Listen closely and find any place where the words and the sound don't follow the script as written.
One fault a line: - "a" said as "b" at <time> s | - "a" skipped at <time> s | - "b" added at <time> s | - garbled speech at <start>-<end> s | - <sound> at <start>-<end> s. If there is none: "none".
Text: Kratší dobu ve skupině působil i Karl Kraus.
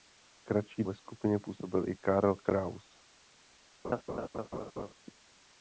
- "dobu" skipped at 0.8 s
- laugh at 3.8-4.9 s